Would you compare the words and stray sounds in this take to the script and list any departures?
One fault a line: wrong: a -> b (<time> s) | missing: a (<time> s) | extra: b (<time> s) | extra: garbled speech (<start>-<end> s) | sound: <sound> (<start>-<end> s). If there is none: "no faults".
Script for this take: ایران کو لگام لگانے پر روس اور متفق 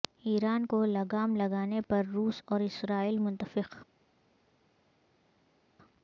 extra: اسرائیل (2.6 s)